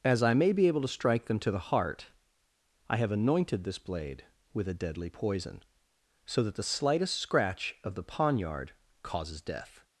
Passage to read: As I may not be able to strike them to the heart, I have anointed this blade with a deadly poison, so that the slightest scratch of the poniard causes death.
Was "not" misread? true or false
true